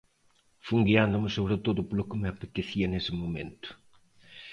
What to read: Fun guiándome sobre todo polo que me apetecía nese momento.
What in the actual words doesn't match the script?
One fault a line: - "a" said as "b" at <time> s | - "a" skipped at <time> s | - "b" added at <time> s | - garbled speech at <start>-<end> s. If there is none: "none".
none